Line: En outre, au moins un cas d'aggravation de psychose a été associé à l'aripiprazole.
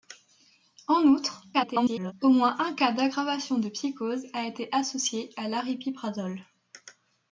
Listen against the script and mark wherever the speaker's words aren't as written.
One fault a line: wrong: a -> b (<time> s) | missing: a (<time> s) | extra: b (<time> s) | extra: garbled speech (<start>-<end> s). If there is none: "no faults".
extra: garbled speech (1.5-2.1 s)